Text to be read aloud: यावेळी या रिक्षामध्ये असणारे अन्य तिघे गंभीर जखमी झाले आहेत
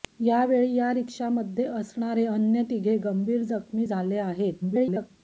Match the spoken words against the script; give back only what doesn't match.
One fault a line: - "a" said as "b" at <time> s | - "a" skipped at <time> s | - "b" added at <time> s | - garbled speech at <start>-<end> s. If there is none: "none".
- garbled speech at 4.6-5.1 s